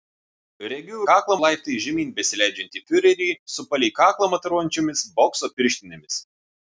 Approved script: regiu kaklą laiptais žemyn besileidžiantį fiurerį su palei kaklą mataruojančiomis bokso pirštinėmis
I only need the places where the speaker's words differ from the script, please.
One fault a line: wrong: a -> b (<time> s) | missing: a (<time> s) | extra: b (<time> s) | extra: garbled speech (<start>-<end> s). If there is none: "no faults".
no faults